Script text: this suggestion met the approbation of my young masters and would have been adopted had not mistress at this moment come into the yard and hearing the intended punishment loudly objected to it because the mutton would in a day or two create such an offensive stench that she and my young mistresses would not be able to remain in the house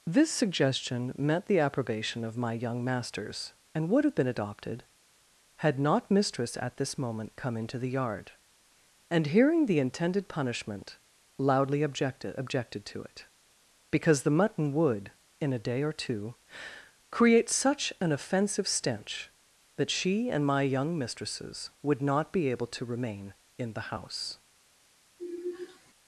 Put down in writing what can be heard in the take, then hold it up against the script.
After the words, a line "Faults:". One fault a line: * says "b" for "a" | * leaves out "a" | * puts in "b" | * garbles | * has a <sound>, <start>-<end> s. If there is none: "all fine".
this suggestion met the approbation of my young masters and would have been adopted had not mistress at this moment come into the yard and hearing the intended punishment loudly objected objected to it because the mutton would in a day or two create such an offensive stench that she and my young mistresses would not be able to remain in the house
Faults:
* puts in "objected"
* has a sigh, 25.2-25.9 s